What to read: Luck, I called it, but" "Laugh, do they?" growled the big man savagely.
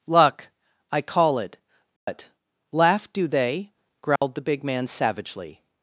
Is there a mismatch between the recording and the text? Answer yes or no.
yes